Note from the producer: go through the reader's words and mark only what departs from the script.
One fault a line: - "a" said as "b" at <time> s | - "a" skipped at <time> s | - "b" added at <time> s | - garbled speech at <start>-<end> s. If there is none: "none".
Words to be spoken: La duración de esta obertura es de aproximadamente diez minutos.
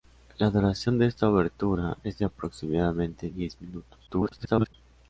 - garbled speech at 4.1-4.7 s